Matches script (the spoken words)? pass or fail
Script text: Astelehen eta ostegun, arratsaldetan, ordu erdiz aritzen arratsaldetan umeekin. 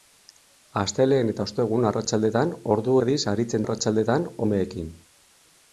pass